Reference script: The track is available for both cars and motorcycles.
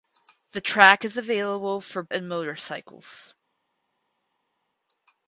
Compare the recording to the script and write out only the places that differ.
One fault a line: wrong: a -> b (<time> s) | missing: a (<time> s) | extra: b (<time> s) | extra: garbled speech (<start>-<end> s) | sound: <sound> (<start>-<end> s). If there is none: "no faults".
missing: both cars (2.0 s)